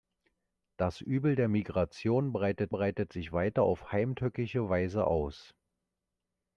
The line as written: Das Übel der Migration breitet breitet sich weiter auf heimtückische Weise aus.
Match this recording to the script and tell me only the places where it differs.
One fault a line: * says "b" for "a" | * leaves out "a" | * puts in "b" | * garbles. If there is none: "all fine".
all fine